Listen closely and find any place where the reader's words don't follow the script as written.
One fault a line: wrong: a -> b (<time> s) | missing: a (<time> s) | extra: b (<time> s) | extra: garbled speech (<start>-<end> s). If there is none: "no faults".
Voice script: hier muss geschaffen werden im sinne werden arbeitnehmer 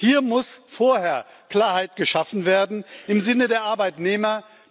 extra: vorher klarheit (0.7 s)
wrong: werden -> der (3.5 s)